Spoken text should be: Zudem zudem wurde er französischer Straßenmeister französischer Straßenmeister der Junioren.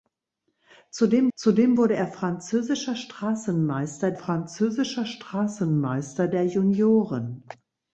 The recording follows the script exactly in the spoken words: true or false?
true